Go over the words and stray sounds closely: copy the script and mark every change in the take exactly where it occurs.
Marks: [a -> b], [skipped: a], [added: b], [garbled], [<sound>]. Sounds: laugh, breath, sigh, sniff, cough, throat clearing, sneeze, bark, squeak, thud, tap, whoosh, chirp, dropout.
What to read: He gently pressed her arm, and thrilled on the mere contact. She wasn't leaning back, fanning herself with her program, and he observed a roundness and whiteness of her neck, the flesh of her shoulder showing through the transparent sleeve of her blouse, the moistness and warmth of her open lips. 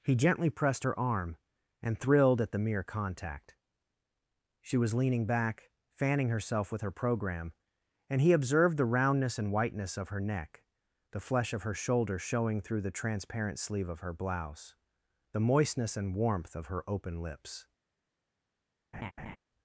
He gently pressed her arm, and thrilled [on -> at] the mere contact. She [wasn't -> was] leaning back, fanning herself with her program, and he observed [a -> the] roundness and whiteness of her neck, the flesh of her shoulder showing through the transparent sleeve of her blouse, the moistness and warmth of her open lips. [laugh]